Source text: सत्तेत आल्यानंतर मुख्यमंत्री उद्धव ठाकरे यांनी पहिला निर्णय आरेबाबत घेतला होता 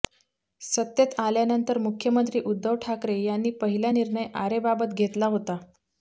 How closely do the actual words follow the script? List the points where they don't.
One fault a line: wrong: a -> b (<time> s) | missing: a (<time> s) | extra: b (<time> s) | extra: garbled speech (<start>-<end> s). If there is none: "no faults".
no faults